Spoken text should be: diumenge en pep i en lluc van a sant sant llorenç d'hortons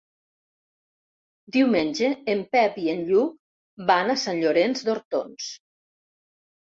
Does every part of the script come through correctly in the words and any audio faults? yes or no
no